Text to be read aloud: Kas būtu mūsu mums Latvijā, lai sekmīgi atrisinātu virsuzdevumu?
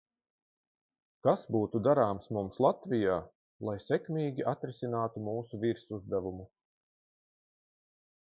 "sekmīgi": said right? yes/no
yes